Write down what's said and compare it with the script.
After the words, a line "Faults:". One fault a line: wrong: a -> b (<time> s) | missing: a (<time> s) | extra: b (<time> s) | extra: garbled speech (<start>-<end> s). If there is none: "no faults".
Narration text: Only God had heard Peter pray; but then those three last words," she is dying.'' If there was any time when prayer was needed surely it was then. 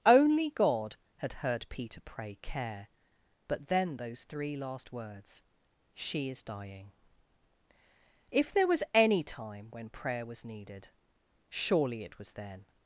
Only God had heard Peter pray; care but then those three last words," she is dying.'' If there was any time when prayer was needed surely it was then.
Faults:
extra: care (2.4 s)